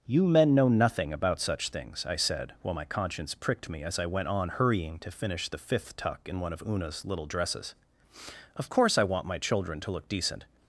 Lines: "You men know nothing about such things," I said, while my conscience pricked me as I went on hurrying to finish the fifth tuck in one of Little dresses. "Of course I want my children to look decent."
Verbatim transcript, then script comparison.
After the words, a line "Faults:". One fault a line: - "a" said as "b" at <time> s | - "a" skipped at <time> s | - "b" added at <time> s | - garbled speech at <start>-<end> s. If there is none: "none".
"You men know nothing about such things," I said, while my conscience pricked me as I went on hurrying to finish the fifth tuck in one of Una's little dresses. "Of course I want my children to look decent."
Faults:
- "Una's" added at 6.7 s